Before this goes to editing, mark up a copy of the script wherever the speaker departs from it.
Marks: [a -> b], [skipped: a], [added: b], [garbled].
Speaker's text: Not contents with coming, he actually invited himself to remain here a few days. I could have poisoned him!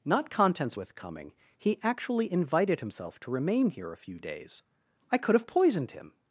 Not contents with coming, he actually invited himself to remain here a few days. I could have poisoned him!